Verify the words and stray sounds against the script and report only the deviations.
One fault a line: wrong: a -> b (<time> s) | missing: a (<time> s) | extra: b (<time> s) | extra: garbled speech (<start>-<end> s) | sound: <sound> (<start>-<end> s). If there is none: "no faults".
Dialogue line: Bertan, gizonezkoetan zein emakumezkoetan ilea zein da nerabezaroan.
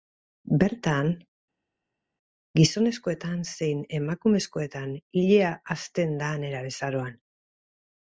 wrong: zein -> hazten (5.8 s)